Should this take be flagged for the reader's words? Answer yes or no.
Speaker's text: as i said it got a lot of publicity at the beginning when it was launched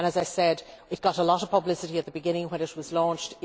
no